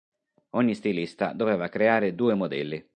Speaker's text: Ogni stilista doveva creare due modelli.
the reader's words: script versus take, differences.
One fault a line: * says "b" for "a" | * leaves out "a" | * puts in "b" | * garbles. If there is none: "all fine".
all fine